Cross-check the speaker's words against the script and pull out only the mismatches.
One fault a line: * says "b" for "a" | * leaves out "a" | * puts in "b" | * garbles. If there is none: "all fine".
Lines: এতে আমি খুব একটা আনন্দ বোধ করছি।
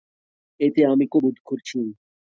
* leaves out "একটা আনন্দ"